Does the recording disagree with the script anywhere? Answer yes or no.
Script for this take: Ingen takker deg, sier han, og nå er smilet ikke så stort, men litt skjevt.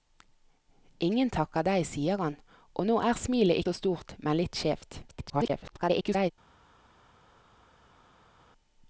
yes